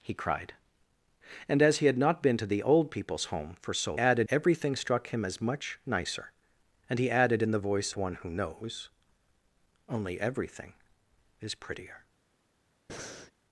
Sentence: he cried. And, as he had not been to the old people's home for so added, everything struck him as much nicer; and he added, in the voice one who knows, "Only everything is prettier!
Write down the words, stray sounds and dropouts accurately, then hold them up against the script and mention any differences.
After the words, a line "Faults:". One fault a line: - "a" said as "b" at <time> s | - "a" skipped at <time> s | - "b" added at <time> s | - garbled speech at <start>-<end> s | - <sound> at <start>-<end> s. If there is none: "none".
he cried. And, as he had not been to the old people's home for so added, everything struck him as much nicer; and he added, in the voice one who knows, "Only everything is prettier!
Faults:
- breath at 12.9-13.3 s